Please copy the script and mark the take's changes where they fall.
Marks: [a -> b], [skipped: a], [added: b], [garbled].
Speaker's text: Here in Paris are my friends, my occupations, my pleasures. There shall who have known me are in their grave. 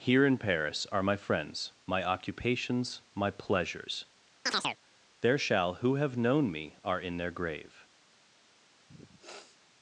Here in Paris are my friends, my occupations, my pleasures. There shall who have known me are in their grave.